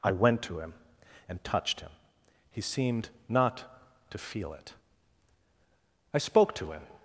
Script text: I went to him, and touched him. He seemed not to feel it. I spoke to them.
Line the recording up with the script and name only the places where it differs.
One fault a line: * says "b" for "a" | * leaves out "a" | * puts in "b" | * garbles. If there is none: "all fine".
* says "him" for "them"